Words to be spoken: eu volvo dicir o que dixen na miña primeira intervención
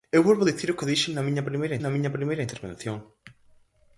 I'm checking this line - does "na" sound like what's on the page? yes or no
yes